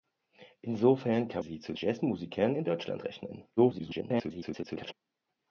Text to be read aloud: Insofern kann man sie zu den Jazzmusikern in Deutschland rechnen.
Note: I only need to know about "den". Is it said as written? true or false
false